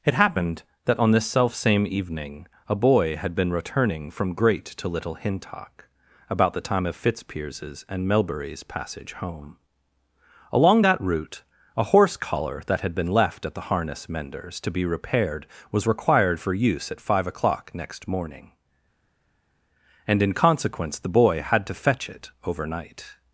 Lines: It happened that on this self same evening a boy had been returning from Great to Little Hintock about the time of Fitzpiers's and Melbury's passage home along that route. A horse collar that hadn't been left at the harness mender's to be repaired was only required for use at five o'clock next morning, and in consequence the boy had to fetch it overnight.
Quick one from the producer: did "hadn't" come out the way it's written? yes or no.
no